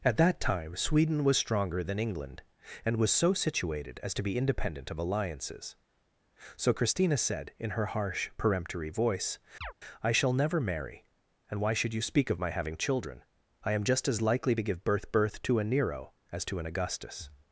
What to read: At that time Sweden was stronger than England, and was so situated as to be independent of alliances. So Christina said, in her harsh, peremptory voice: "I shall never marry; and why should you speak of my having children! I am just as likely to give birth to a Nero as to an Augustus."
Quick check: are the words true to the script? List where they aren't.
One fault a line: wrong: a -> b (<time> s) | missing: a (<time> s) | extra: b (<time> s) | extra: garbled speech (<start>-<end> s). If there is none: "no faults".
extra: birth (15.1 s)